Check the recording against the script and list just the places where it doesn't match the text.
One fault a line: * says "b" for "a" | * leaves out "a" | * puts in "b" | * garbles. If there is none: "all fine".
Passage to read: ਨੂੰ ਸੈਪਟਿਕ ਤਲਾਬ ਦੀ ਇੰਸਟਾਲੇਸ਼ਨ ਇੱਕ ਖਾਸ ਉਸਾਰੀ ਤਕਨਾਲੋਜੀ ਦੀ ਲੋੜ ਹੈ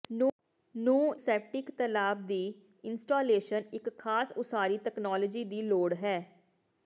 all fine